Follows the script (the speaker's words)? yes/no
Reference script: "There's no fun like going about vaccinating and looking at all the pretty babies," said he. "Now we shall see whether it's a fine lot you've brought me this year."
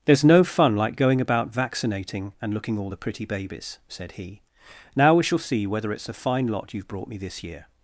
no